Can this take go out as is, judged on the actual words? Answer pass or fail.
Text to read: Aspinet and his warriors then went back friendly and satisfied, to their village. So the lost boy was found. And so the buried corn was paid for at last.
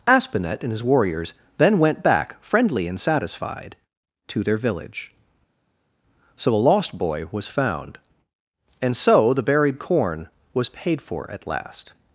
fail